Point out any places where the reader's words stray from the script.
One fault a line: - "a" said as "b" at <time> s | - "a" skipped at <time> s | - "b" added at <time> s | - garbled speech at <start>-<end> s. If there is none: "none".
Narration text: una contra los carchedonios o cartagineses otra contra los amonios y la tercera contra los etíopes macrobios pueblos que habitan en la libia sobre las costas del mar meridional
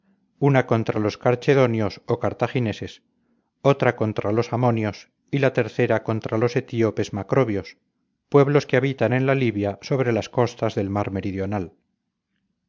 none